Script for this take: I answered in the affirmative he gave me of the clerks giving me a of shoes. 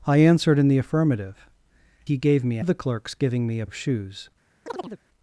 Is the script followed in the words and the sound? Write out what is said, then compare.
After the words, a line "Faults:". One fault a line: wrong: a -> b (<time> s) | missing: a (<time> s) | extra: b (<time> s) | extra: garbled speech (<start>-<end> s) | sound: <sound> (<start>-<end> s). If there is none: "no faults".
I answered in the affirmative he gave me of the clerks giving me a of shoes.
Faults:
sound: chirp (4.7-5.0 s)